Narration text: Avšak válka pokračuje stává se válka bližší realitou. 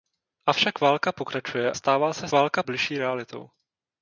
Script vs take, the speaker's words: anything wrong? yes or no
no